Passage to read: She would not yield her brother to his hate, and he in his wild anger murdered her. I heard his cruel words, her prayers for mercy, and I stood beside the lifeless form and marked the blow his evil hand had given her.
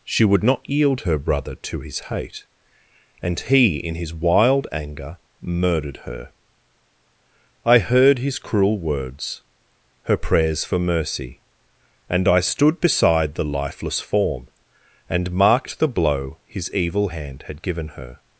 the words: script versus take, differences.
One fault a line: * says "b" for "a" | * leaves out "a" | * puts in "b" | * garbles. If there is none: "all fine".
all fine